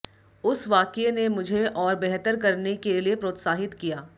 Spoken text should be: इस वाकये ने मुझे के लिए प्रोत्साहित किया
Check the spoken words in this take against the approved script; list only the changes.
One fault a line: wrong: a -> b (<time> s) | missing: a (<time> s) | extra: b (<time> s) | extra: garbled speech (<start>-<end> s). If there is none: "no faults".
wrong: इस -> उस (0.4 s)
extra: और बेहतर करने (1.7 s)